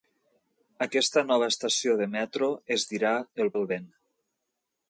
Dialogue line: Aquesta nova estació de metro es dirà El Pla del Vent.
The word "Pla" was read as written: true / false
false